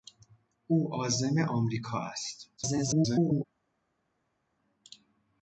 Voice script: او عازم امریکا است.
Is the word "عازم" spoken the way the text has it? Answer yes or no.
yes